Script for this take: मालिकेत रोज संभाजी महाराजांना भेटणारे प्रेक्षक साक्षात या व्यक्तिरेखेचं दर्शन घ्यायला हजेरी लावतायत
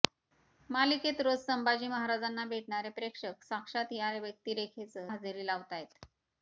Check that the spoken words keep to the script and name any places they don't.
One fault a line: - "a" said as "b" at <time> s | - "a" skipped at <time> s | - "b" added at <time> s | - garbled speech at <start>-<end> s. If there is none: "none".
- "दर्शन घ्यायला" skipped at 5.1 s